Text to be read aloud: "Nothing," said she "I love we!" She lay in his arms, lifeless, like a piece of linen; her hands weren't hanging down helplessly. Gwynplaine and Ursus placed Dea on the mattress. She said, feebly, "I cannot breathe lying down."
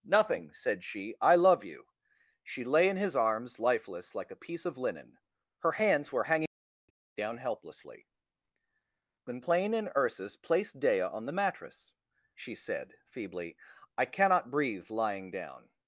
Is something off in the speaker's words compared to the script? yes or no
yes